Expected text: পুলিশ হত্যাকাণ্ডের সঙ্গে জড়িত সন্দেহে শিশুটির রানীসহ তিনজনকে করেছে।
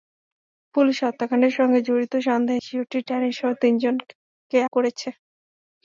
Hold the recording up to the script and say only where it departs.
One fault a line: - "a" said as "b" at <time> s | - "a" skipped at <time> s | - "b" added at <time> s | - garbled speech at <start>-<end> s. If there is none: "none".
none